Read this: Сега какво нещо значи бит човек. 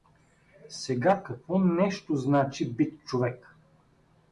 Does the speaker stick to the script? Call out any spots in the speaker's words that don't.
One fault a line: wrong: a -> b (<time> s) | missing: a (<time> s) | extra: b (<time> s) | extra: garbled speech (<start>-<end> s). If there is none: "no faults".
no faults